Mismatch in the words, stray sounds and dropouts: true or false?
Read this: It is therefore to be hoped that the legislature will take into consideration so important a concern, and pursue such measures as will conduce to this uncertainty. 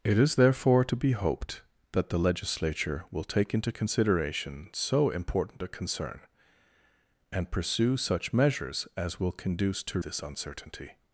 false